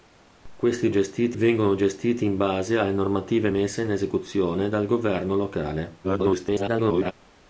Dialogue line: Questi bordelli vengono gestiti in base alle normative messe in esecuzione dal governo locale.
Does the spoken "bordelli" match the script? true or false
false